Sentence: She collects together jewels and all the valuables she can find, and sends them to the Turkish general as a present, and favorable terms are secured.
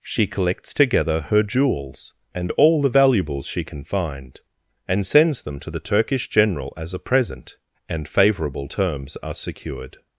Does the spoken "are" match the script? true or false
true